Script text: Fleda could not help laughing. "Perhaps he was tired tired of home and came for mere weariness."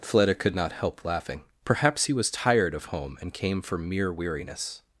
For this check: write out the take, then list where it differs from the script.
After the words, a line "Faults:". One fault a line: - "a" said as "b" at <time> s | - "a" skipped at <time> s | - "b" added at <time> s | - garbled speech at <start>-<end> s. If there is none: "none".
Fleda could not help laughing. "Perhaps he was tired of home and came for mere weariness."
Faults:
- "tired" skipped at 2.7 s